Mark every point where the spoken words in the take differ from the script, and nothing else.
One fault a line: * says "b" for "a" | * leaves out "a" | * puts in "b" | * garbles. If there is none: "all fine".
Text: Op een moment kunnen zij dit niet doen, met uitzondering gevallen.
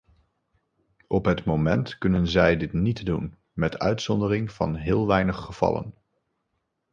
* says "het" for "een"
* puts in "van heel weinig"